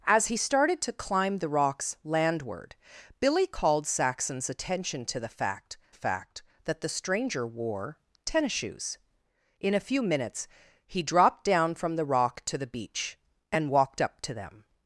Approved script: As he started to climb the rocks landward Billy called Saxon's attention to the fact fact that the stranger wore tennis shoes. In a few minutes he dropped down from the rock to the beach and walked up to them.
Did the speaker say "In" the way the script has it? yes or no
yes